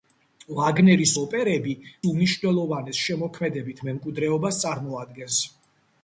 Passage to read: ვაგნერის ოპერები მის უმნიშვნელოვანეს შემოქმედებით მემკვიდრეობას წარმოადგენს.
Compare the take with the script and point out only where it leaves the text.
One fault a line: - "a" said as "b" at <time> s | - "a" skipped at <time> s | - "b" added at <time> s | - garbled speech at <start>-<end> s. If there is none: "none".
- "მის" skipped at 1.7 s